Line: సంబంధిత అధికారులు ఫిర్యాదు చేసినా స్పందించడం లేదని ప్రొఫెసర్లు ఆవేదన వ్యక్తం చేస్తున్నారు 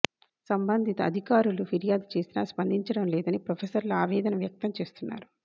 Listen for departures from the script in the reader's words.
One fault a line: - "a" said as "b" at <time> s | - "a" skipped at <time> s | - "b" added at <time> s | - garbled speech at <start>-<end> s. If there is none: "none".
none